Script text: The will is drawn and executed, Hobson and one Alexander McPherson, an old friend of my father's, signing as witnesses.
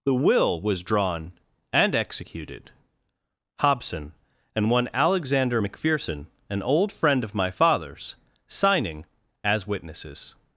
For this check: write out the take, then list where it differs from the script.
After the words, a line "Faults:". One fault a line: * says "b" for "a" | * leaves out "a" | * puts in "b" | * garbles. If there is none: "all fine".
The will was drawn and executed, Hobson and one Alexander McPherson, an old friend of my father's, signing as witnesses.
Faults:
* says "was" for "is"